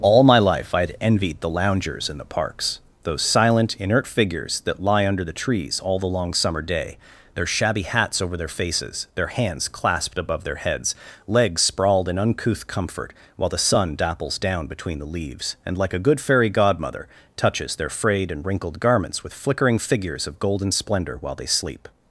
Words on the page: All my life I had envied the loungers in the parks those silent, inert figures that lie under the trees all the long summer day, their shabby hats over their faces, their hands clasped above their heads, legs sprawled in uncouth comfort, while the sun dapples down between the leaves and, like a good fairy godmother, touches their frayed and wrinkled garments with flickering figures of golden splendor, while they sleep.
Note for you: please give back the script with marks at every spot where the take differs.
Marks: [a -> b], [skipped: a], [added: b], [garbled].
All my life I had envied the loungers in the parks those silent, inert figures that lie under the trees all the long summer day, their shabby hats over their faces, their hands clasped above their heads, legs sprawled in uncouth comfort, while the sun dapples down between the leaves and, like a good fairy godmother, touches their frayed and wrinkled garments with flickering figures of golden splendor, while they sleep.